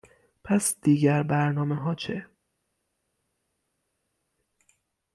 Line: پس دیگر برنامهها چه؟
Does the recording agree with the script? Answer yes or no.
yes